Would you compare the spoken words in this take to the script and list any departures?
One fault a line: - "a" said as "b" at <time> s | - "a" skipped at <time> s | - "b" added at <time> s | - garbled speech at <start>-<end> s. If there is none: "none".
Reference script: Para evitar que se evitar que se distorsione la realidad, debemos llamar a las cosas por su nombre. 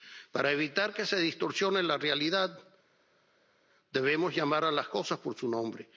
- "evitar que se" skipped at 1.2 s